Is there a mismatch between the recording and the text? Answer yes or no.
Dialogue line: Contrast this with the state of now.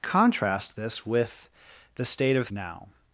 no